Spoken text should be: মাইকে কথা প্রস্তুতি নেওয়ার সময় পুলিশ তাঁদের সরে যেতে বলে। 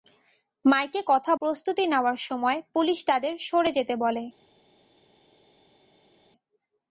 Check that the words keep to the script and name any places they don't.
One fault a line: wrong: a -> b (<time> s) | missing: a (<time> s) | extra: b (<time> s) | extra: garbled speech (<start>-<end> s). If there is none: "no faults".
no faults